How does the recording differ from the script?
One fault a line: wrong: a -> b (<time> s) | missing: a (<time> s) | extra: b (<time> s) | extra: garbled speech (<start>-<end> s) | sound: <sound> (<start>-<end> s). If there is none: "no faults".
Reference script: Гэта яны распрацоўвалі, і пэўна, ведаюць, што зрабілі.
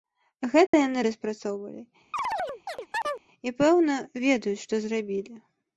sound: dropout (0.7-0.7 s)
sound: chirp (2.1-3.2 s)